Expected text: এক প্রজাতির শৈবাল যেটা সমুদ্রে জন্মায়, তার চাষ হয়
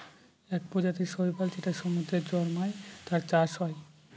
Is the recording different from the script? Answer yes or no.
no